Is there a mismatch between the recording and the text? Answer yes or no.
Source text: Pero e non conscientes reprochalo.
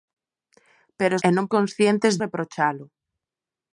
no